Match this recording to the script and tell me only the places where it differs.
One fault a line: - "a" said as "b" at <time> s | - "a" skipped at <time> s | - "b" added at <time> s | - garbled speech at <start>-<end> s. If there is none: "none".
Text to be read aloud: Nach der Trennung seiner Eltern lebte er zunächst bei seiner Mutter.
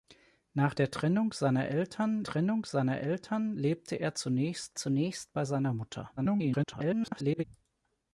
- "Trennung seiner Eltern" added at 2.2 s
- "zunächst" added at 4.8 s
- garbled speech at 6.2-7.4 s